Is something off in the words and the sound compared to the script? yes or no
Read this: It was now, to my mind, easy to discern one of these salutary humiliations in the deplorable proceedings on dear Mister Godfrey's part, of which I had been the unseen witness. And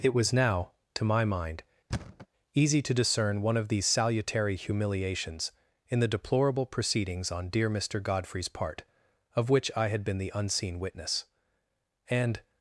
yes